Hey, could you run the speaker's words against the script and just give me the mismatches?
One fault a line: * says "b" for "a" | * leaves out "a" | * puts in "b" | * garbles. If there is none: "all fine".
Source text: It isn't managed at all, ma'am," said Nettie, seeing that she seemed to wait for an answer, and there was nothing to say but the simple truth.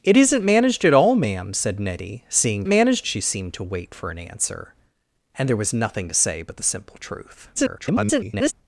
* says "managed" for "that"
* garbles